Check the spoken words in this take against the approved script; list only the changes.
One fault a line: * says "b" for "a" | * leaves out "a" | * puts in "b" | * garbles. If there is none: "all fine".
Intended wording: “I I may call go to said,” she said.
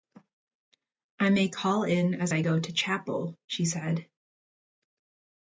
* leaves out "I"
* puts in "in as I"
* says "chapel" for "said"